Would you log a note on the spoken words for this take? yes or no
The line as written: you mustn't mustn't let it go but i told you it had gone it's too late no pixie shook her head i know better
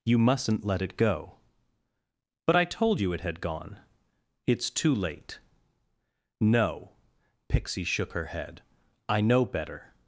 yes